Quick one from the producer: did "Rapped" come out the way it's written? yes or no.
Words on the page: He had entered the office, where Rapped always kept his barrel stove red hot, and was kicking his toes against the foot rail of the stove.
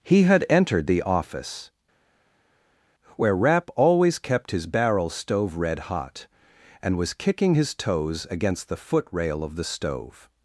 no